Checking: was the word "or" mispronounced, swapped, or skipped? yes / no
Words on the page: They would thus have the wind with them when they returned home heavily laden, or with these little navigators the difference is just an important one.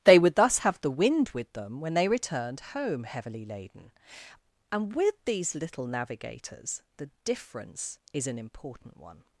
yes